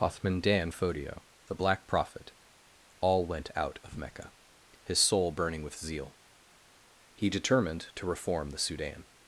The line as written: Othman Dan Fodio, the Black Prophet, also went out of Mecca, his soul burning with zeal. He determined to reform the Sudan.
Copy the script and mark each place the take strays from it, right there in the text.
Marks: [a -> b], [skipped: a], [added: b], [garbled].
Othman Dan Fodio, the Black Prophet, [also -> all] went out of Mecca, his soul burning with zeal. He determined to reform the Sudan.